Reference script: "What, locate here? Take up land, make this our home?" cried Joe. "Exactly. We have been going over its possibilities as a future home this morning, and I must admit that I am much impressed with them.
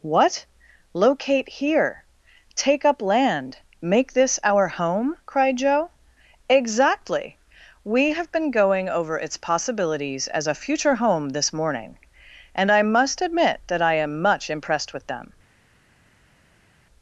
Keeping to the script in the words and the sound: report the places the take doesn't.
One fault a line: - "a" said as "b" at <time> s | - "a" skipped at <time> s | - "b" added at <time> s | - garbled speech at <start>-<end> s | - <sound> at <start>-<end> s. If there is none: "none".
none